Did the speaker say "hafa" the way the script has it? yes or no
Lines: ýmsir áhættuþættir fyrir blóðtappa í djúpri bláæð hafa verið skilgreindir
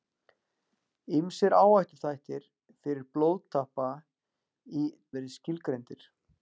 no